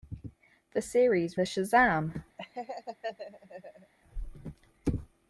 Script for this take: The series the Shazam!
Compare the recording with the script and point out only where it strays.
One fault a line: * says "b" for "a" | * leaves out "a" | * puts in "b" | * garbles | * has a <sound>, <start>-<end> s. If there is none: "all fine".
* has a laugh, 2.4-3.9 s